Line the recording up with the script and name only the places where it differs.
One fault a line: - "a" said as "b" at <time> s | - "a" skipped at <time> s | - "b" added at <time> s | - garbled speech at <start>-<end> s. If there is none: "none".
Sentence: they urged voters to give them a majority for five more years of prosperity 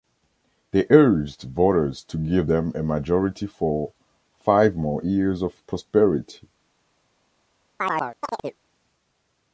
none